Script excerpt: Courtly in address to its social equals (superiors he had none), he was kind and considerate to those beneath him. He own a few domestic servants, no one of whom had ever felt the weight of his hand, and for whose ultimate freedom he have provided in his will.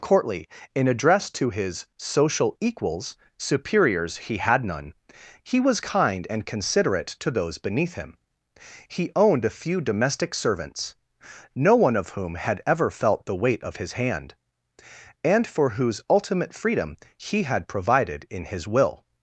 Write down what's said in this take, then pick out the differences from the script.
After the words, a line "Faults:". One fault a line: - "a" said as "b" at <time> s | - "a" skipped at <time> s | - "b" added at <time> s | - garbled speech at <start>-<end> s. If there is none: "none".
Courtly in address to his social equals (superiors he had none), he was kind and considerate to those beneath him. He owned a few domestic servants, no one of whom had ever felt the weight of his hand, and for whose ultimate freedom he had provided in his will.
Faults:
- "its" said as "his" at 1.5 s
- "own" said as "owned" at 9.1 s
- "have" said as "had" at 17.4 s